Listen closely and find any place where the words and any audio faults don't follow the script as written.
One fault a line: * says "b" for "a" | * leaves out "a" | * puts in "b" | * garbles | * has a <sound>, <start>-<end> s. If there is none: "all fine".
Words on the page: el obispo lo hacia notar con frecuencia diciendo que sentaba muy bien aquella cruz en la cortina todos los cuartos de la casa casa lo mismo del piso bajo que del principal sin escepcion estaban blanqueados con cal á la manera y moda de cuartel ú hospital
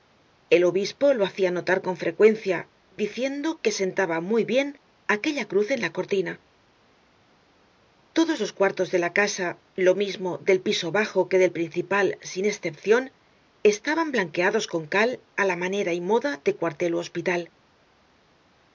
* leaves out "casa"